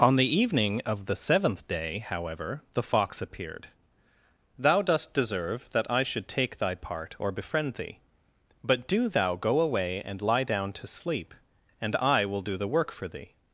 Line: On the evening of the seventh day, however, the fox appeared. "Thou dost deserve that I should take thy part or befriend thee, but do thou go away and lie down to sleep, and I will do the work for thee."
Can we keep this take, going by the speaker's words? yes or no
yes